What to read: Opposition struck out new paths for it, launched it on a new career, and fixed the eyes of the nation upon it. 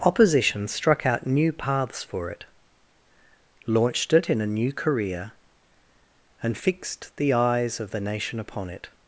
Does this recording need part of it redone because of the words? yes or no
yes